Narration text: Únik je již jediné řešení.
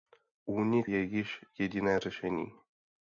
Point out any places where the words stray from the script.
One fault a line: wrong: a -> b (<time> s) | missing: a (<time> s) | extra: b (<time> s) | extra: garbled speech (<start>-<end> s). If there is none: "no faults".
no faults